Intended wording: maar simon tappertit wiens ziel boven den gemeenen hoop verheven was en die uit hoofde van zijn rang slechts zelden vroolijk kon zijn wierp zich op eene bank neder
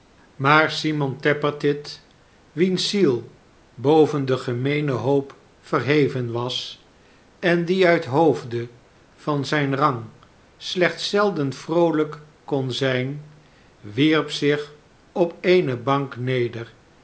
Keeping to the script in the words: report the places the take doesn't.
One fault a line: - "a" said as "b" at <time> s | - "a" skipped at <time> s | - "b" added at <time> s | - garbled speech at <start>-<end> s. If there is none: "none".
none